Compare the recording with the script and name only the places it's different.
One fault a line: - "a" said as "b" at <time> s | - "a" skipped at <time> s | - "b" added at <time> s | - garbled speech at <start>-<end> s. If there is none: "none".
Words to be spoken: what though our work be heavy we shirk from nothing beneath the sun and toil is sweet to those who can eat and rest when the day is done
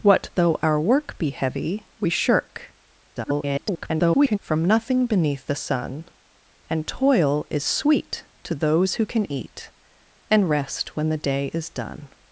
- garbled speech at 3.2-4.4 s